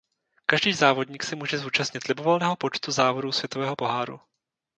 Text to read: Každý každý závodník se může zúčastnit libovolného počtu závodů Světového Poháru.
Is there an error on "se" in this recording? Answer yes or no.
no